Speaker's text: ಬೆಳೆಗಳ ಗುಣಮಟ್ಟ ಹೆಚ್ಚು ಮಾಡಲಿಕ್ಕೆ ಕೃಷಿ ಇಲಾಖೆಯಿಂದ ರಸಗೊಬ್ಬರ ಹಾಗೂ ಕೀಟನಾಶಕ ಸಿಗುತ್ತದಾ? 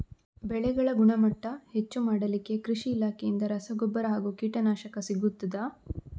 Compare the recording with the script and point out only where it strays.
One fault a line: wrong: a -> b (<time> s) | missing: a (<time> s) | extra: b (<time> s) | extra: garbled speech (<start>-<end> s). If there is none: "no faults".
no faults